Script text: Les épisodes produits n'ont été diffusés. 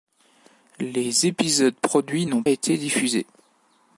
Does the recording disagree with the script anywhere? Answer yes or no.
no